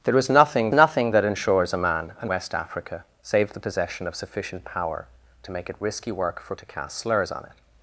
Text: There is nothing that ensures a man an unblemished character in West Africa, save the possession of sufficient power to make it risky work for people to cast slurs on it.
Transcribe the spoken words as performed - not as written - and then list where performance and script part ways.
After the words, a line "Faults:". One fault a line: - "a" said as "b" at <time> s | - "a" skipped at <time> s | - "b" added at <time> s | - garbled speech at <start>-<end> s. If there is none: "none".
There is nothing nothing that ensures a man an West Africa, save the possession of sufficient power to make it risky work for to cast slurs on it.
Faults:
- "nothing" added at 0.7 s
- "unblemished character in" skipped at 2.3 s
- "people" skipped at 6.6 s